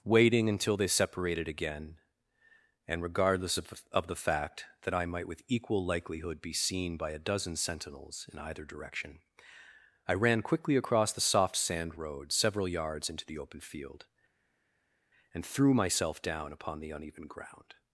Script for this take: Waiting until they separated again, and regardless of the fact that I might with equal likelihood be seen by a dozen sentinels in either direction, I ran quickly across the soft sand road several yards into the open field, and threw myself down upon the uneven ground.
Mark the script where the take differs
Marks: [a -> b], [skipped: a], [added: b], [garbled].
Waiting until they separated again, and regardless of [added: of] the fact that I might with equal likelihood be seen by a dozen sentinels in either direction, I ran quickly across the soft sand road several yards into the open field, and threw myself down upon the uneven ground.